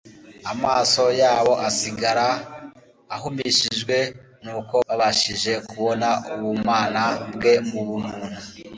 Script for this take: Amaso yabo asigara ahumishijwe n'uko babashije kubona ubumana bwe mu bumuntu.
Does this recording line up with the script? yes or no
yes